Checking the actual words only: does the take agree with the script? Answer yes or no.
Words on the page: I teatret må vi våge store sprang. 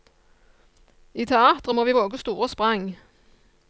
yes